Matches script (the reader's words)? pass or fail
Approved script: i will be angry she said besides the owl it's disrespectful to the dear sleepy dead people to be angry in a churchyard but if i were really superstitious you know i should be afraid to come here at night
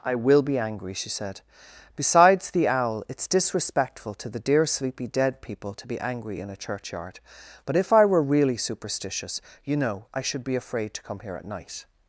pass